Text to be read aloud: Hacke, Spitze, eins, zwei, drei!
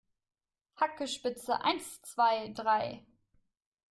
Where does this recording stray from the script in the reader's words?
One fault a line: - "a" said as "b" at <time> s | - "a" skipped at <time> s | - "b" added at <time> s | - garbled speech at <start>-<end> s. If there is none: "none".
none